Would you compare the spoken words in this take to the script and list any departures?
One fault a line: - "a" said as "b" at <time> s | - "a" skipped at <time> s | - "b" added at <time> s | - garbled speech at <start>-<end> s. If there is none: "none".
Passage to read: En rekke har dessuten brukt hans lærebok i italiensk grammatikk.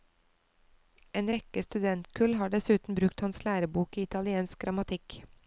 - "studentkull" added at 1.6 s